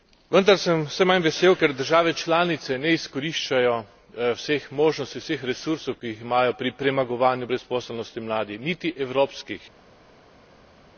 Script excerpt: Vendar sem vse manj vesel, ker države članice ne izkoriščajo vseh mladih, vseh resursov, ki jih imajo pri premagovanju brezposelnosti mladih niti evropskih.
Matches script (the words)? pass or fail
fail